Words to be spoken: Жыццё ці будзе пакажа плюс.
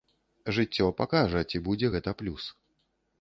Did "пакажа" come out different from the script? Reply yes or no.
yes